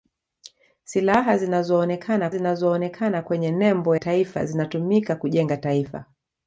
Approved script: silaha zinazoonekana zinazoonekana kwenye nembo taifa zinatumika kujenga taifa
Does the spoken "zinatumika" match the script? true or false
true